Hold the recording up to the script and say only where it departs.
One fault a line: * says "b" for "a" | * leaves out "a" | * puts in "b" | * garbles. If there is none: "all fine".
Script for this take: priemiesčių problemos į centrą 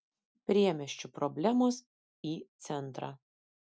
all fine